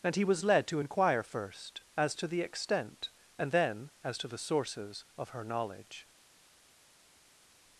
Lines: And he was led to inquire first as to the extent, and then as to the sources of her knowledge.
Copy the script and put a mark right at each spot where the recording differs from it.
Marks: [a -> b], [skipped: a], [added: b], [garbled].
And he was led to inquire first as to the extent, and then as to the sources of her knowledge.